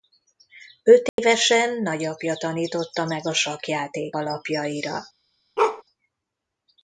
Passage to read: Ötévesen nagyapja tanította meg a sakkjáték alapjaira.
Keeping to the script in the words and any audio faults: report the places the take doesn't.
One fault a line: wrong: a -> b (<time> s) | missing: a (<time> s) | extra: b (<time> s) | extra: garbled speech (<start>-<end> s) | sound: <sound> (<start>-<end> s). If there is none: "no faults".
sound: dropout (1.1-1.2 s)
sound: bark (5.6-5.8 s)